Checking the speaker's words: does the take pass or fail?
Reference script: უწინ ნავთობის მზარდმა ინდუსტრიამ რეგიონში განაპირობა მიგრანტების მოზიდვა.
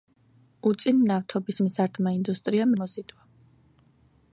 fail